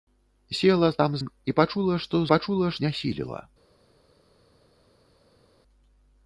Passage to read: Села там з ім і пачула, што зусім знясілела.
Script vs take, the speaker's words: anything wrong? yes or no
yes